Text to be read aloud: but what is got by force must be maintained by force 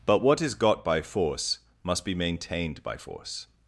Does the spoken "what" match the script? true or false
true